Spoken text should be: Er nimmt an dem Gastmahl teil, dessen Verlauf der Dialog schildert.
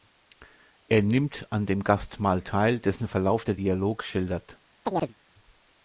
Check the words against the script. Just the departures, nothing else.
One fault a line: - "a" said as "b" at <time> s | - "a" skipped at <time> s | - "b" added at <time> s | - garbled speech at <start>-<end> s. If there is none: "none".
none